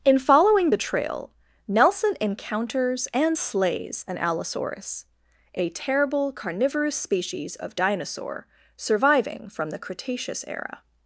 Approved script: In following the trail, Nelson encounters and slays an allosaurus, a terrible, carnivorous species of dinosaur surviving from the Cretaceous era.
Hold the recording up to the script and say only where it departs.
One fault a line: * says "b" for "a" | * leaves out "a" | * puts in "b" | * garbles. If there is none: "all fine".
all fine